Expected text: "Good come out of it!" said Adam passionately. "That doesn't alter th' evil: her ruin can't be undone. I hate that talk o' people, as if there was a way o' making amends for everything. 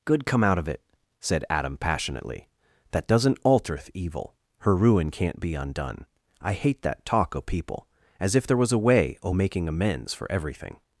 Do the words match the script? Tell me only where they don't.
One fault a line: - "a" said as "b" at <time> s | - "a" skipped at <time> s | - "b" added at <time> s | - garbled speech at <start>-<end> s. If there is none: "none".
none